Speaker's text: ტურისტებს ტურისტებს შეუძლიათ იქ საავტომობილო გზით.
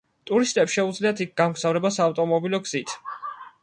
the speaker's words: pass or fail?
fail